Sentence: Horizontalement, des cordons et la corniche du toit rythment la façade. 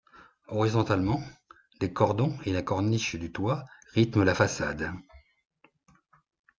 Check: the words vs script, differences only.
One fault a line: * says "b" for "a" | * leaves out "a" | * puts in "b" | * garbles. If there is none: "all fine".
all fine